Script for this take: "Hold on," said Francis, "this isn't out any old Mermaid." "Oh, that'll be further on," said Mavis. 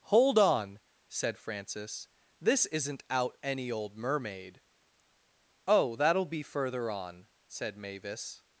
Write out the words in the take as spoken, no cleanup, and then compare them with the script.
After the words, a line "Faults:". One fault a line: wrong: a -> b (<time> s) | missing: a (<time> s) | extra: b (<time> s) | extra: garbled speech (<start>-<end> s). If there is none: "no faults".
"Hold on," said Francis, "this isn't out any old Mermaid." "Oh, that'll be further on," said Mavis.
Faults:
no faults